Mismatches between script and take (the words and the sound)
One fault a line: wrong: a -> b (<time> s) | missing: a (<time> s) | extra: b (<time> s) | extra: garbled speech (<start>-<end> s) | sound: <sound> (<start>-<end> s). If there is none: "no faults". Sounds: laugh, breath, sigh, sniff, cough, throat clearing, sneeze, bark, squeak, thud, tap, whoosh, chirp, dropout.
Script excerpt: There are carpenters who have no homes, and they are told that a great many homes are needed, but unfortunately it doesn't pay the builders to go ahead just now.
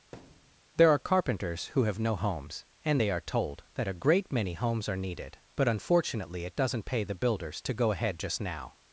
sound: thud (0.1-0.6 s)